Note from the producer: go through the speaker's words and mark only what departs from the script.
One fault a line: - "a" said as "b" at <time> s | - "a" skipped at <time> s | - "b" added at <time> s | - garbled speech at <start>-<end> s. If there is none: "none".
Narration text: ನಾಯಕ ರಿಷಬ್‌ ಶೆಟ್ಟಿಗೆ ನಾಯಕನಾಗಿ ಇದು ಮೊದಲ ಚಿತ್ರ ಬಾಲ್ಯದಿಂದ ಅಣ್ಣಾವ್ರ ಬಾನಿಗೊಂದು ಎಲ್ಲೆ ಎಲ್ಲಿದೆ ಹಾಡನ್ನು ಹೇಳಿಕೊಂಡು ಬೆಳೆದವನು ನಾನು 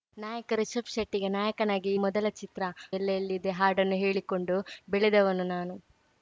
- "ಇದು" skipped at 1.9 s
- "ಬಾಲ್ಯದಿಂದ ಅಣ್ಣಾವ್ರ ಬಾನಿಗೊಂದು" skipped at 2.6 s